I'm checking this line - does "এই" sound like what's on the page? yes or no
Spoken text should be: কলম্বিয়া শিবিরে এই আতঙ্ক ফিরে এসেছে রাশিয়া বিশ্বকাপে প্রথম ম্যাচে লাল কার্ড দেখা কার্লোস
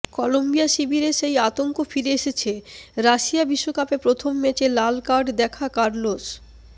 no